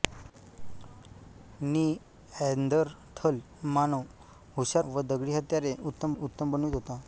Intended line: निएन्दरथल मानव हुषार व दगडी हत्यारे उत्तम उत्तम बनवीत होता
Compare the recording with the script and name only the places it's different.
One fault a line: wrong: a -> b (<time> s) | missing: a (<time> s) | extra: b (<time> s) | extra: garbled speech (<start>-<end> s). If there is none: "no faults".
no faults